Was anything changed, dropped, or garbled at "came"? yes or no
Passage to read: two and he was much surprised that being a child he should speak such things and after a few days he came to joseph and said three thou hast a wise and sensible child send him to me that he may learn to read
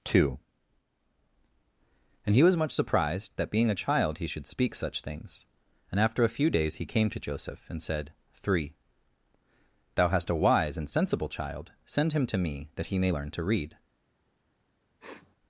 no